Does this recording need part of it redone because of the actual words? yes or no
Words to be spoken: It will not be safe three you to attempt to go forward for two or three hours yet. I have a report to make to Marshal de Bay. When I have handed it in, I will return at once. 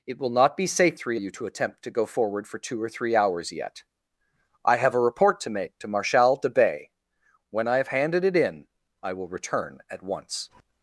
no